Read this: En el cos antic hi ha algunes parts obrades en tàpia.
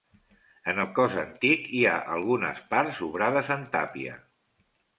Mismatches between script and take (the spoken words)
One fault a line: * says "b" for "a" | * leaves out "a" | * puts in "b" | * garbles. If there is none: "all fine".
all fine